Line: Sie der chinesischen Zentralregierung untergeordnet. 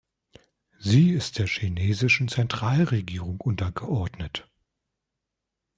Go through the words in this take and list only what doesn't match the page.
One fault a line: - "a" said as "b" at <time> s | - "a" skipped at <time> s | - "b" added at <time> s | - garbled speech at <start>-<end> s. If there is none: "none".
- "ist" added at 1.1 s